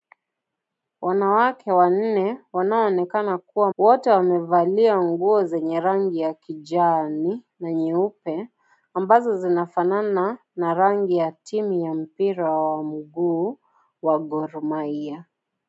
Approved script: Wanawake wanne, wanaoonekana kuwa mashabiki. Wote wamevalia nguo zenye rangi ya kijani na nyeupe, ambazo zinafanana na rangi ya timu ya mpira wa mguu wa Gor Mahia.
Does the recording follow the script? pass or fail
fail